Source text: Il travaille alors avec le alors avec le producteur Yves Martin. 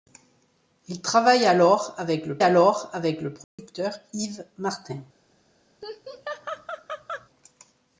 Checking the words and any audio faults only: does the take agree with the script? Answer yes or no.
no